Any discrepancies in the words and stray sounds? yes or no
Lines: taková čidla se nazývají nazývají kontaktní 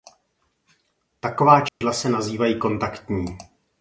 yes